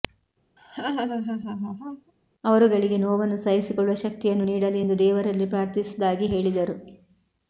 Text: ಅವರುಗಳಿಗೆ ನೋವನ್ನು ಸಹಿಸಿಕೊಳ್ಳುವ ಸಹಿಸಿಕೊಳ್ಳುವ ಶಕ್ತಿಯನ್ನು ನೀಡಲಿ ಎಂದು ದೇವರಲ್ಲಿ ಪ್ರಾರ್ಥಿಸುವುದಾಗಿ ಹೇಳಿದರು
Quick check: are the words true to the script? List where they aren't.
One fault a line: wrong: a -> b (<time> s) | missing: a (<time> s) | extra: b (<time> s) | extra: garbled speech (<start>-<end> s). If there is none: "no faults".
missing: ಸಹಿಸಿಕೊಳ್ಳುವ (4.0 s)